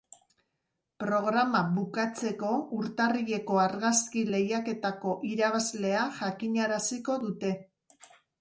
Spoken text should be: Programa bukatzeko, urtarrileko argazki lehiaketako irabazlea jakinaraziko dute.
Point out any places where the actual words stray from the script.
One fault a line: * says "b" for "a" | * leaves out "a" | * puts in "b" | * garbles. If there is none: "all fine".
all fine